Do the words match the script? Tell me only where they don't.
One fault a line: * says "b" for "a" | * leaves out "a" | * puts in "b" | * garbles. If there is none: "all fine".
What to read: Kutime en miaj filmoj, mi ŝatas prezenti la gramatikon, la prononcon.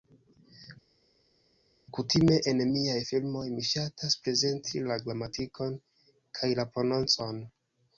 * puts in "kaj"